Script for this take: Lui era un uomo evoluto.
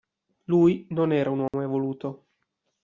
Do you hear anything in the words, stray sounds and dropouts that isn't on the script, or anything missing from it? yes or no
yes